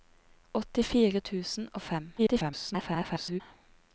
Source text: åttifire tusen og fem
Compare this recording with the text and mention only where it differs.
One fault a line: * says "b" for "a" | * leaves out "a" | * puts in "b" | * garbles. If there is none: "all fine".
* garbles